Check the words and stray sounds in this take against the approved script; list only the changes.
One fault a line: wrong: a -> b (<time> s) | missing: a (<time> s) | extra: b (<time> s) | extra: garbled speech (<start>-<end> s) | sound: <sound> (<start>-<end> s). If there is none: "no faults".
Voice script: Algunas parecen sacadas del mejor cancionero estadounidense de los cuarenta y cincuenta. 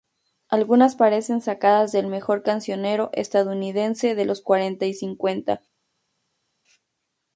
no faults